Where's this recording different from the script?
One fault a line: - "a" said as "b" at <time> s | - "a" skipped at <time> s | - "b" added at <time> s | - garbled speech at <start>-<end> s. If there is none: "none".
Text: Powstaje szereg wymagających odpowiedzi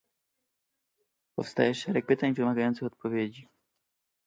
- "pytań" added at 2.1 s